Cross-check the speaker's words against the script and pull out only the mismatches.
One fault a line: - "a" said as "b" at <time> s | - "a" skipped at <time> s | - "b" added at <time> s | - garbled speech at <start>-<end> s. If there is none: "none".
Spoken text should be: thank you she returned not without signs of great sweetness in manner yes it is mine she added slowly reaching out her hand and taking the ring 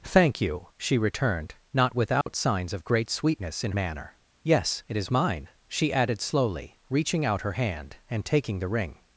none